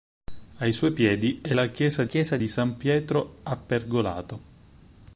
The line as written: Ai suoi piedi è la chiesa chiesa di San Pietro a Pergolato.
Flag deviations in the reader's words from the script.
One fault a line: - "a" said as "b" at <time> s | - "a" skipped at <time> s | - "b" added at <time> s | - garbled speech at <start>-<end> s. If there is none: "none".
none